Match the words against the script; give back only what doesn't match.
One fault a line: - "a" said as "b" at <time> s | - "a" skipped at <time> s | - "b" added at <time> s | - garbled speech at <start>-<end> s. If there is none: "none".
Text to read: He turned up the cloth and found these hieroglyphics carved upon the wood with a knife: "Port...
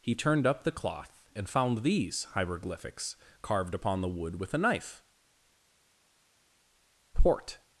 none